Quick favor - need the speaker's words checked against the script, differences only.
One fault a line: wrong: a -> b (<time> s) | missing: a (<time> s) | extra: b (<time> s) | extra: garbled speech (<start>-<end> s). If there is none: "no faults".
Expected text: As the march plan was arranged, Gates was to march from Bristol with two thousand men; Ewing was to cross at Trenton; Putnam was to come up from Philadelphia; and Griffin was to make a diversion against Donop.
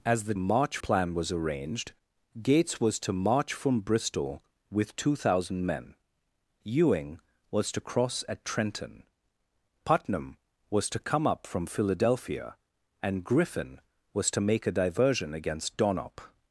no faults